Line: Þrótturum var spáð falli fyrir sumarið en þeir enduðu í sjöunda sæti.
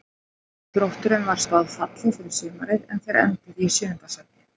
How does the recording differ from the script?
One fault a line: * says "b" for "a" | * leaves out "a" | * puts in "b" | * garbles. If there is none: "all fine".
all fine